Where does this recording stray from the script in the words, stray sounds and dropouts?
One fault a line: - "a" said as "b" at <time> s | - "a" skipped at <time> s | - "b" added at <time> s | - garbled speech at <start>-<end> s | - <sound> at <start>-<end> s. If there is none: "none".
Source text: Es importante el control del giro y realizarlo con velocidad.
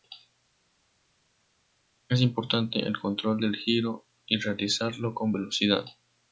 none